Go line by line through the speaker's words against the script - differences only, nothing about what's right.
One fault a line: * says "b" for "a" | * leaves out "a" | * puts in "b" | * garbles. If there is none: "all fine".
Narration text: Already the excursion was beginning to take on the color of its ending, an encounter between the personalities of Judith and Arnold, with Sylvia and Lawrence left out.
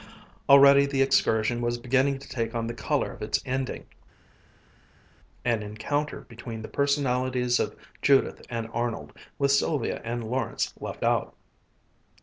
all fine